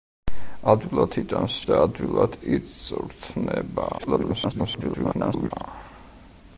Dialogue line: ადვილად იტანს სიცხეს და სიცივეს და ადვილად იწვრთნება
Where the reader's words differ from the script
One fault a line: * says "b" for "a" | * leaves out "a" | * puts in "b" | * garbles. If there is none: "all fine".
* leaves out "სიცხეს და სიცივეს"
* garbles